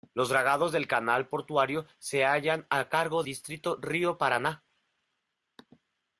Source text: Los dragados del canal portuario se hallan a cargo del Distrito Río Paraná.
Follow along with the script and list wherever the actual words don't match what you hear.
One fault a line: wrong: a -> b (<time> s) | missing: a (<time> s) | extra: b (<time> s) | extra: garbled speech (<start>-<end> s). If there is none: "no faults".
missing: del (3.2 s)